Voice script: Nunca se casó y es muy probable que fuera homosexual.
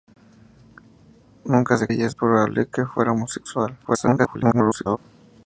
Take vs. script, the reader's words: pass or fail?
fail